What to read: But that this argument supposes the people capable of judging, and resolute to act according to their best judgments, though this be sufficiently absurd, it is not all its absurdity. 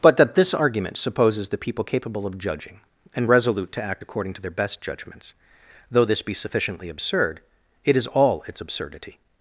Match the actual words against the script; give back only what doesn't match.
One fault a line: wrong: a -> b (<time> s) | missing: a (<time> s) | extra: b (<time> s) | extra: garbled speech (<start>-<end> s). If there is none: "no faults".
missing: not (8.1 s)